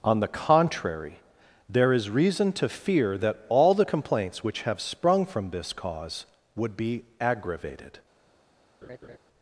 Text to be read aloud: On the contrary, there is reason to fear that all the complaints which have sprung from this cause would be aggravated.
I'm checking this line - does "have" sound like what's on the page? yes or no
yes